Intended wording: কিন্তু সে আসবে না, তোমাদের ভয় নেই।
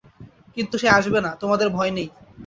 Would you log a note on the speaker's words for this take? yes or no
no